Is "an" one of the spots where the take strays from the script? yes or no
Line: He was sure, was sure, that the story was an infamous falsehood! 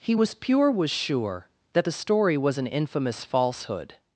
no